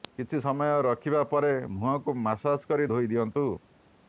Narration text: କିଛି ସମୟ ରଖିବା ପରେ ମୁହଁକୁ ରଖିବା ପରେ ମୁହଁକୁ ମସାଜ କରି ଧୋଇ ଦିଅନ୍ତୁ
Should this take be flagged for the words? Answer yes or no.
yes